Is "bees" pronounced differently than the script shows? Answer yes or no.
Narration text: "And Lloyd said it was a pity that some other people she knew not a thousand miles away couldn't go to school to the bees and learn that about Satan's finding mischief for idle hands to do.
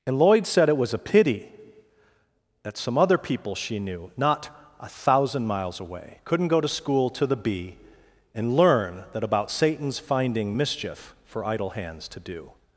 yes